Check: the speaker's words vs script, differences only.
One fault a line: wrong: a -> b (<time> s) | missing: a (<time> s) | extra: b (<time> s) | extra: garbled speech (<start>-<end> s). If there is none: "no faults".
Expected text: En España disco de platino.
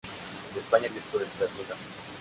no faults